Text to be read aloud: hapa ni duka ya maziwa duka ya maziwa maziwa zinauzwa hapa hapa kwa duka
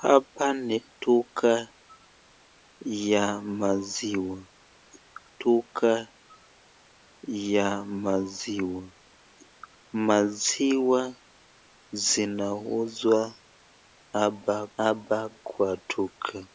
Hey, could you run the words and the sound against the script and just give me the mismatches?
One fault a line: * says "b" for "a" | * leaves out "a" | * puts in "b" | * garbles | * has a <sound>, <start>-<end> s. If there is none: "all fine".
all fine